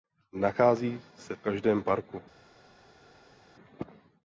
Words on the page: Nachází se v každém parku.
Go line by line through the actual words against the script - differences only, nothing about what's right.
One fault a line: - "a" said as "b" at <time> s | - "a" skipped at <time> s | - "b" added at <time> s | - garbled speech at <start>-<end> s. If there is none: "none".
none